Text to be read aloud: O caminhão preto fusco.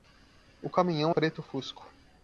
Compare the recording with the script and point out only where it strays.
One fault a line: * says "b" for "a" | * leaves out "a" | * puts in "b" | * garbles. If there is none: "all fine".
all fine